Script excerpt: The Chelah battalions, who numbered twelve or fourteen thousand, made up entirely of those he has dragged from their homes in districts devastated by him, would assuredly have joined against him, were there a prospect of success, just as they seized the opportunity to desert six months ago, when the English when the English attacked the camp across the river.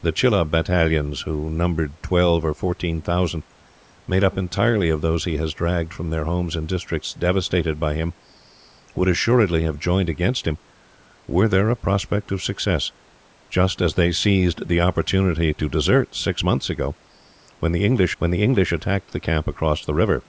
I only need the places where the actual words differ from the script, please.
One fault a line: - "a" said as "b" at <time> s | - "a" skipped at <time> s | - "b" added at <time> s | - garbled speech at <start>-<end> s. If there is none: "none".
none